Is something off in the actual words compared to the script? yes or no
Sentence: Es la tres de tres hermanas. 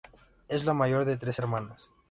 yes